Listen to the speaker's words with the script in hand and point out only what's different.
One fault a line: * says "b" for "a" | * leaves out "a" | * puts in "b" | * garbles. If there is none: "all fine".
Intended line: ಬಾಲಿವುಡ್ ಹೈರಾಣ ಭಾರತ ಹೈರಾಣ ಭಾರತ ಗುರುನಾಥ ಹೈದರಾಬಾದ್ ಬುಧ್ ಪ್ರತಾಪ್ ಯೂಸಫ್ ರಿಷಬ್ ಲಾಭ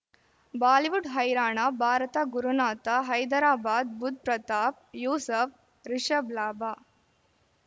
* leaves out "ಹೈರಾಣ ಭಾರತ"